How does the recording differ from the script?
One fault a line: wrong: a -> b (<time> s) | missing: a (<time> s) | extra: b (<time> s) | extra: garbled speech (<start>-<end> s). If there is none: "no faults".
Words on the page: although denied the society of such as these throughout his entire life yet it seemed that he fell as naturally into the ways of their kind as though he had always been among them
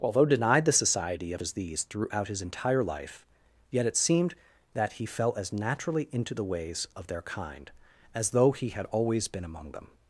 missing: such (1.4 s)